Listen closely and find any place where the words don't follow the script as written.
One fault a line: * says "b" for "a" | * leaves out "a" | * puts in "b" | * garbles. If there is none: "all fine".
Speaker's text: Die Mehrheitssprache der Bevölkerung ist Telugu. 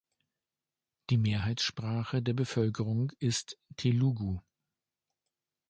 all fine